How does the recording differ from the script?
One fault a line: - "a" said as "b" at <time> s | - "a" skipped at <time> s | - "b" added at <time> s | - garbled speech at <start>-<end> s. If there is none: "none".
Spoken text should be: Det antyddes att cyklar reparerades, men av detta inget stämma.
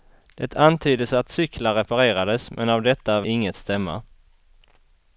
none